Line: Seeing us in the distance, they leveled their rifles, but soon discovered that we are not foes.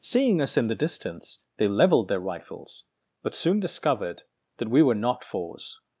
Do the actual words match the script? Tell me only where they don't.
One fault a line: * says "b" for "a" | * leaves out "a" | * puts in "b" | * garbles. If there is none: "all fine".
* says "were" for "are"